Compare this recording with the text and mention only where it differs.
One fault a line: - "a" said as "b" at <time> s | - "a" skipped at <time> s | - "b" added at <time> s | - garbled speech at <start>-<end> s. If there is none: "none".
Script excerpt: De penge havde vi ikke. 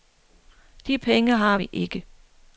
- "havde" said as "har" at 1.4 s